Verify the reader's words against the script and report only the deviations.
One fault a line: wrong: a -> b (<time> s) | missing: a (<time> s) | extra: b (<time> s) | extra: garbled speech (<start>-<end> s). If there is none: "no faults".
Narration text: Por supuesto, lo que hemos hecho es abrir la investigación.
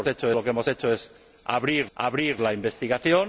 wrong: supuesto -> hecho (0.0 s)
extra: abrir (1.9 s)